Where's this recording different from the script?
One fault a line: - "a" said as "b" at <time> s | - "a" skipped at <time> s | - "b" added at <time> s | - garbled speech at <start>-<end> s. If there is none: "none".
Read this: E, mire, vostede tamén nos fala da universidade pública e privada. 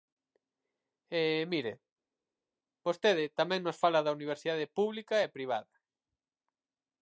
none